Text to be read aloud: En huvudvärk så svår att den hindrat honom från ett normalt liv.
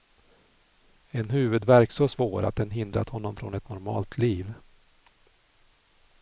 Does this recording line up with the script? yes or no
yes